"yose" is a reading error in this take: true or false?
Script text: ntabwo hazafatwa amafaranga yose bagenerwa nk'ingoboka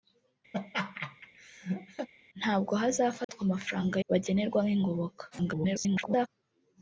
true